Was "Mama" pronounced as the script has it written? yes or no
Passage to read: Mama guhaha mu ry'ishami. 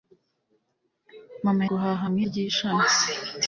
yes